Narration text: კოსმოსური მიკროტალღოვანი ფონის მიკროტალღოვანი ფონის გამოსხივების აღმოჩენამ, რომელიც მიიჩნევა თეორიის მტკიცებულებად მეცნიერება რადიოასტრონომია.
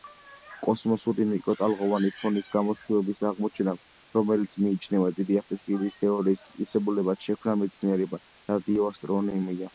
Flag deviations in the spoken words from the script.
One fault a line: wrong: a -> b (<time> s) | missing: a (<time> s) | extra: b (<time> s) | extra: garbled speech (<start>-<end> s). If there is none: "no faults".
missing: მიკროტალღოვანი ფონის (2.5 s)
extra: დიდი აფეთქების (5.2 s)
extra: შექმნა (7.3 s)